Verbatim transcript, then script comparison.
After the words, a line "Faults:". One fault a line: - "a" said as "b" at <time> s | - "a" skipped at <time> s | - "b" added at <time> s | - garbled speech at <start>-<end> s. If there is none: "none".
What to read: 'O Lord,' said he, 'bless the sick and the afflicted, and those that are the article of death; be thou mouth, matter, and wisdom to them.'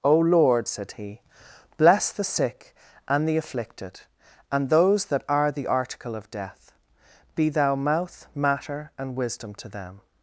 'O Lord,' said he, 'bless the sick and the afflicted, and those that are the article of death; be thou mouth, matter, and wisdom to them.'
Faults:
none